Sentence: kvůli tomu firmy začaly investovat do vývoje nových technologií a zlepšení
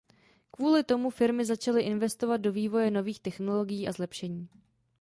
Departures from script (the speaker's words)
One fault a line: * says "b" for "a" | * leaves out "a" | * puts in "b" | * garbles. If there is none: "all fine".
all fine